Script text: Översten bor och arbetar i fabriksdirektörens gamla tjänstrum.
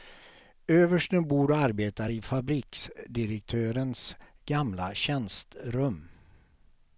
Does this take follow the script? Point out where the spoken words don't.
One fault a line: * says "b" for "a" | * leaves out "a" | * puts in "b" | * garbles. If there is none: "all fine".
all fine